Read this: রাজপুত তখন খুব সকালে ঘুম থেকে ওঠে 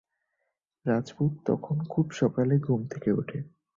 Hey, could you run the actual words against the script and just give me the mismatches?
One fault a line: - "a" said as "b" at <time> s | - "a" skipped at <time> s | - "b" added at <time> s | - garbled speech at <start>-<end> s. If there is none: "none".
none